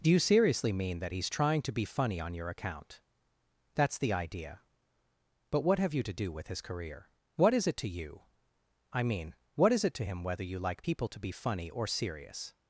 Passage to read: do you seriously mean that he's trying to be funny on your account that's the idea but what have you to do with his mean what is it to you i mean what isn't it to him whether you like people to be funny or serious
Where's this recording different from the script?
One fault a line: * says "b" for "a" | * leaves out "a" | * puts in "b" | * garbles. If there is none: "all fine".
* says "career" for "mean"
* says "is" for "isn't"